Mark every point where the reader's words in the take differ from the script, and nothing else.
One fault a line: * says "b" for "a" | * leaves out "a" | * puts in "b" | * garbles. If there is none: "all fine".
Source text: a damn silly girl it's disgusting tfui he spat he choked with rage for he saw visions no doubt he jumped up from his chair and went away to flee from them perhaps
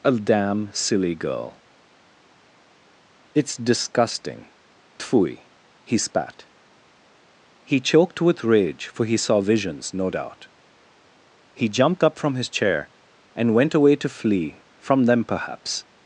all fine